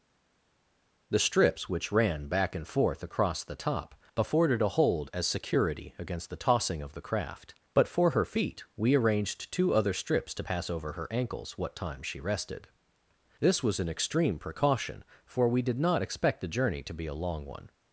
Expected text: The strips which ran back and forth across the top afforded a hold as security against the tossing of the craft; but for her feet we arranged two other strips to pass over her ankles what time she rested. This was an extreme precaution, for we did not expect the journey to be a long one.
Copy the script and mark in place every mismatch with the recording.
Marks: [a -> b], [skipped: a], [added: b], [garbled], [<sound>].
The strips which ran back and forth across the top afforded a hold as security against the tossing of the craft; but for her feet we arranged two other strips to pass over her ankles what time she rested. This was an extreme precaution, for we did not expect the journey to be a long one.